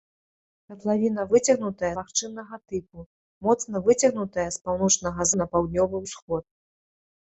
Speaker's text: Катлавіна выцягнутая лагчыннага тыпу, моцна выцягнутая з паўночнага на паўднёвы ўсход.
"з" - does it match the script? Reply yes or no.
yes